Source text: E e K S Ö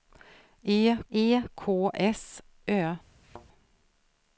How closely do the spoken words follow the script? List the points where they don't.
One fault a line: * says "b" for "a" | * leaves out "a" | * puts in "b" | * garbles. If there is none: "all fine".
all fine